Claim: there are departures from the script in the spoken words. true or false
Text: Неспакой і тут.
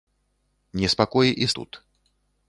false